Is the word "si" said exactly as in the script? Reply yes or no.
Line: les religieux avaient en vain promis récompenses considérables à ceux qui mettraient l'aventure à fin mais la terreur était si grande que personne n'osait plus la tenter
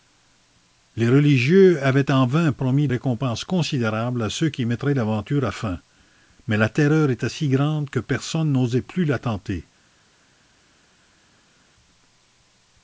yes